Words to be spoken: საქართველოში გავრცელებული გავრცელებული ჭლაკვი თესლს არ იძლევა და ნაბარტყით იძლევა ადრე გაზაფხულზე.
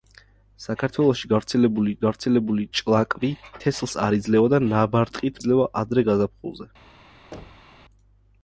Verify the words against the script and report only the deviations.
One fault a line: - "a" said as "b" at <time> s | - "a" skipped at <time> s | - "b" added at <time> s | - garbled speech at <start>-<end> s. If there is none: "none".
none